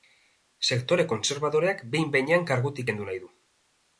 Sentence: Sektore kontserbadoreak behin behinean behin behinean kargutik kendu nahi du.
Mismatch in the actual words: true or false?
true